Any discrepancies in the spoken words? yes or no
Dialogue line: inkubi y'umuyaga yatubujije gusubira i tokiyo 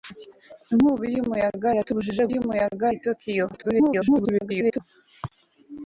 yes